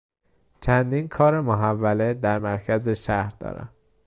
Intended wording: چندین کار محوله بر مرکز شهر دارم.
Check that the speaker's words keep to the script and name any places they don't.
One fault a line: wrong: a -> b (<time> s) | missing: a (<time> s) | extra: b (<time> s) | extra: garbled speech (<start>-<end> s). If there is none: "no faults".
wrong: بر -> در (2.1 s)